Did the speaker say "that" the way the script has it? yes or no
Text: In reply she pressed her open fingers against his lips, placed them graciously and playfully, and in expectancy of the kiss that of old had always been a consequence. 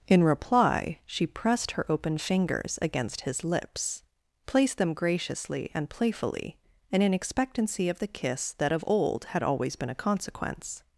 yes